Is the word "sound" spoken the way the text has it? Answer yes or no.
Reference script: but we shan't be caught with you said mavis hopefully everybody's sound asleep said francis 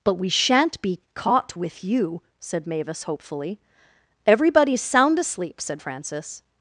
yes